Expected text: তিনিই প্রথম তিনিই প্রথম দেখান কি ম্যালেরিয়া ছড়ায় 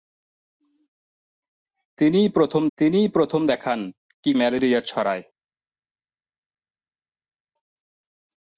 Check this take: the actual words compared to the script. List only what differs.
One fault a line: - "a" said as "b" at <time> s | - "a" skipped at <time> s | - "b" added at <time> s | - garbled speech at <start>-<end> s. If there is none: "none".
none